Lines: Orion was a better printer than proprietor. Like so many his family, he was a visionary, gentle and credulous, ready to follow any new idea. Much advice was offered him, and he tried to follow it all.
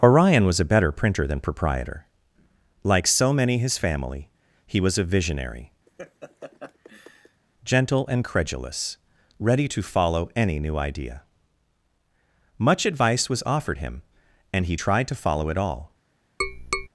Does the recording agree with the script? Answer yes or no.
yes